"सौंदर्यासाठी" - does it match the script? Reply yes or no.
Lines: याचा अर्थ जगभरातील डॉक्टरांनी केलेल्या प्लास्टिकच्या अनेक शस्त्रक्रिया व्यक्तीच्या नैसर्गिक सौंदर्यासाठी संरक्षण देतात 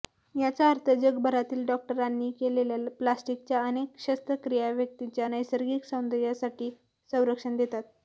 yes